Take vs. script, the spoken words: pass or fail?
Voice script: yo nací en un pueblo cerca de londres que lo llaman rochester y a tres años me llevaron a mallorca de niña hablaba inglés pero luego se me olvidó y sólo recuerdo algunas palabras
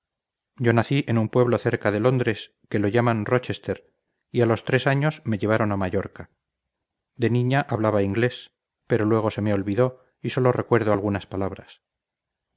fail